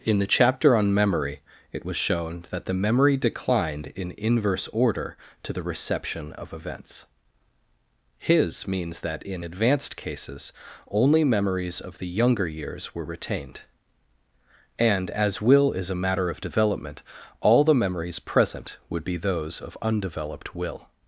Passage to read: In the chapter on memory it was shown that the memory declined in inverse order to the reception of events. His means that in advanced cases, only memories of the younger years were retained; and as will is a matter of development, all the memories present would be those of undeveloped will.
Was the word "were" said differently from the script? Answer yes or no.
no